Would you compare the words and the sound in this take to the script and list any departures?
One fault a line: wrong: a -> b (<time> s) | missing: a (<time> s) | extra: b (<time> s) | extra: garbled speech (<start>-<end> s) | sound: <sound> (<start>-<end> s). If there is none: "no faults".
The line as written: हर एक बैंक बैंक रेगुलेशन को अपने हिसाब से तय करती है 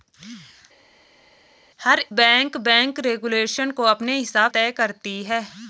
missing: एक (2.0 s)
missing: से (4.5 s)